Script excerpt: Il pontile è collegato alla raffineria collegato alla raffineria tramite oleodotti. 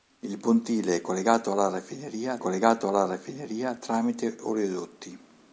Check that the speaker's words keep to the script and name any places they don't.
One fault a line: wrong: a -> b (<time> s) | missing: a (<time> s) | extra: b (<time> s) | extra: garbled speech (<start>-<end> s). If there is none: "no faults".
no faults